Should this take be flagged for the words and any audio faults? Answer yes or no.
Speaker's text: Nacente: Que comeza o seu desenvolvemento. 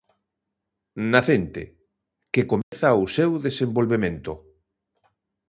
yes